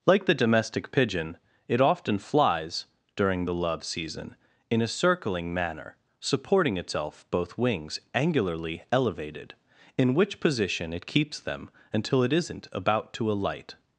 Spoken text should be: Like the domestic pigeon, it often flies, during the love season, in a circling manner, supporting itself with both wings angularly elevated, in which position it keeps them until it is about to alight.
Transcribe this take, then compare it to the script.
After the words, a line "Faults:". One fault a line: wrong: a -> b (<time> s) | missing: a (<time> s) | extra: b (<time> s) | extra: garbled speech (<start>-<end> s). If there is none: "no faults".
Like the domestic pigeon, it often flies, during the love season, in a circling manner, supporting itself both wings angularly elevated, in which position it keeps them until it isn't about to alight.
Faults:
missing: with (7.3 s)
wrong: is -> isn't (12.3 s)